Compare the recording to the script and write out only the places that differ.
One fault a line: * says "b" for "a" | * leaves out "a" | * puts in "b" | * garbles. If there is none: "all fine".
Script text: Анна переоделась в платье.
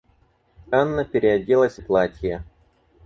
all fine